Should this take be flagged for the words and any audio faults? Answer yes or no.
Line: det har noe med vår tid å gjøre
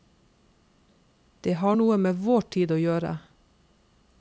no